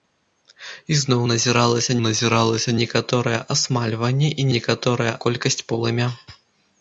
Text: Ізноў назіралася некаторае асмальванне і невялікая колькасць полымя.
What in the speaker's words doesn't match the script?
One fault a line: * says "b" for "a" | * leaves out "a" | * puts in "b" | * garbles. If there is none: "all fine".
* puts in "назіралася"
* says "некаторае" for "невялікая"